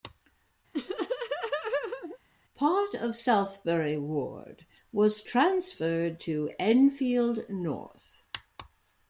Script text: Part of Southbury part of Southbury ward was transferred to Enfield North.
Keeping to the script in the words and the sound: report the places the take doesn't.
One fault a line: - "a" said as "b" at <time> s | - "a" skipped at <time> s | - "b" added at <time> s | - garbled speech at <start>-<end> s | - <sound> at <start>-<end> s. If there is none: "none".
- laugh at 0.7-2.2 s
- "part of Southbury" skipped at 4.0 s